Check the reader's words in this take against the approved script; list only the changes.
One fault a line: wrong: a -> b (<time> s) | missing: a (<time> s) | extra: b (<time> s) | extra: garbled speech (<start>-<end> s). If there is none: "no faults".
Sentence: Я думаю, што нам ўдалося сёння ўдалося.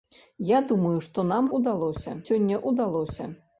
no faults